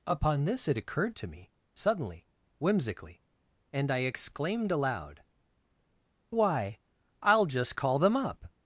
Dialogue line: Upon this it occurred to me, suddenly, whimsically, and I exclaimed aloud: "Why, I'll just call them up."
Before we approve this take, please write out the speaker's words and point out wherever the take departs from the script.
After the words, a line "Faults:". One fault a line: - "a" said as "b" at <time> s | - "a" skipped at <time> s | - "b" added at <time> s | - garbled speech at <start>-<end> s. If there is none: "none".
Upon this it occurred to me, suddenly, whimsically, and I exclaimed aloud: "Why, I'll just call them up."
Faults:
none